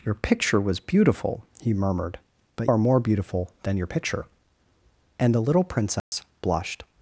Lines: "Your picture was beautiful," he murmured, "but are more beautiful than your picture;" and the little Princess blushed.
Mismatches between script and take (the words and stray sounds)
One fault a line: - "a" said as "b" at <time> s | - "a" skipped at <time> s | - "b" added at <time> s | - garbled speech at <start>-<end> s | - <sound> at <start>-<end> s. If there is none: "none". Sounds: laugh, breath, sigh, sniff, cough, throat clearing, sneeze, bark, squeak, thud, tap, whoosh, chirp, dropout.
- dropout at 6.0-6.1 s